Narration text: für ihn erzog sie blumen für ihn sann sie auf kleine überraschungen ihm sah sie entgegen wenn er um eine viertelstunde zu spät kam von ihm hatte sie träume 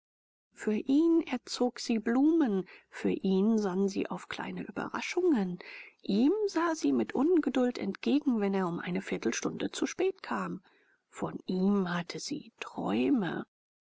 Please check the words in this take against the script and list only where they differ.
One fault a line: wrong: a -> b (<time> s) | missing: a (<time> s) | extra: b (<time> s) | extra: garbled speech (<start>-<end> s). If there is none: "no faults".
extra: mit ungeduld (6.9 s)